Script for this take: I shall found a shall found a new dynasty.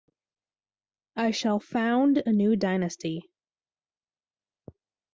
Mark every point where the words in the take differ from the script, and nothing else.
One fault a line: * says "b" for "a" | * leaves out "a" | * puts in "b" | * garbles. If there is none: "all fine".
* leaves out "shall found a"